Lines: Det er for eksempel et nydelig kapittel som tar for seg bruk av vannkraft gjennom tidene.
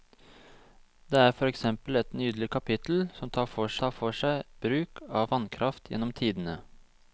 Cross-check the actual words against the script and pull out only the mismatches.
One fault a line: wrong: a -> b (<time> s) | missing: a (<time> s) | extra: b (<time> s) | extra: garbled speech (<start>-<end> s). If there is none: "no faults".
extra: tar for (3.8 s)